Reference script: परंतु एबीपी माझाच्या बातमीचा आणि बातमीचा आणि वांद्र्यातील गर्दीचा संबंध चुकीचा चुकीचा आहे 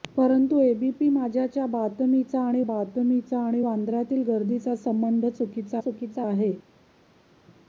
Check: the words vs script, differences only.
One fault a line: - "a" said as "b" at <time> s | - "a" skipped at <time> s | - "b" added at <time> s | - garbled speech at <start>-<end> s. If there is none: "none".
none